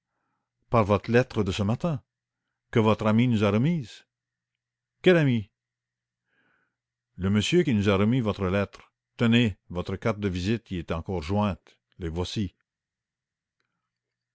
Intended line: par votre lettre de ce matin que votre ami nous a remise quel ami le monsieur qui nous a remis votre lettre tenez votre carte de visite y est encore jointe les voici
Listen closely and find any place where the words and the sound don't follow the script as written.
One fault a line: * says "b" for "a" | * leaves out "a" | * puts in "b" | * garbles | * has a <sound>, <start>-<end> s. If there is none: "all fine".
all fine